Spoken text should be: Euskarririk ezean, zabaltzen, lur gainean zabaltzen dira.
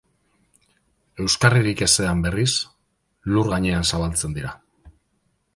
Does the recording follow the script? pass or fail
fail